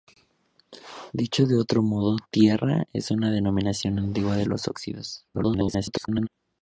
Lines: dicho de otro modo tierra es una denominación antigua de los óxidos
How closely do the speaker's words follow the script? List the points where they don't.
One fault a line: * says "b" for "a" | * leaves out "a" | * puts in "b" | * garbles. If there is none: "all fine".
* garbles